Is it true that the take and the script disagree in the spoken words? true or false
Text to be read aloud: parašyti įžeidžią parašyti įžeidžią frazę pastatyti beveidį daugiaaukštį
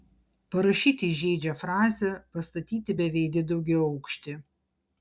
true